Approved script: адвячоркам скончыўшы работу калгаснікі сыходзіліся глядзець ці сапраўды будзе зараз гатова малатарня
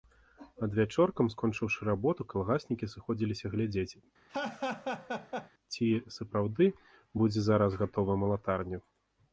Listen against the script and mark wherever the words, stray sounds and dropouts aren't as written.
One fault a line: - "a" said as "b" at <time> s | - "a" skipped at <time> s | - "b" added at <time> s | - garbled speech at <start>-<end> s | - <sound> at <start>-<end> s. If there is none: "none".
- laugh at 4.3-5.5 s